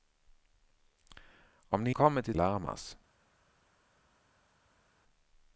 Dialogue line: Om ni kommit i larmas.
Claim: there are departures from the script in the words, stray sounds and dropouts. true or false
false